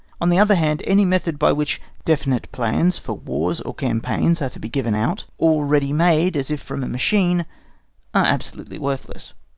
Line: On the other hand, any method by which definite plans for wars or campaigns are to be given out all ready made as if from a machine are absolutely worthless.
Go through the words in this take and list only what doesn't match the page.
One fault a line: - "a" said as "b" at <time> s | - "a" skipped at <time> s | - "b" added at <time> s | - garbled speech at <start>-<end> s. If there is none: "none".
none